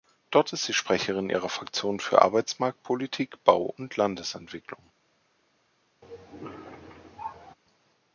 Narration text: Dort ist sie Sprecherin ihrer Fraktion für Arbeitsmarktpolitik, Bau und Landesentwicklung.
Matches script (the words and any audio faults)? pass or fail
fail